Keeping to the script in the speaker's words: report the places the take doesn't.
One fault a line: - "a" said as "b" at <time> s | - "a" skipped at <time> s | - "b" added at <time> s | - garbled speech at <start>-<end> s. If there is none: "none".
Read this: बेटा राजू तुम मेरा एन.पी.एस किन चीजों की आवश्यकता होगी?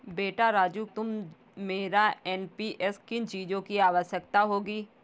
none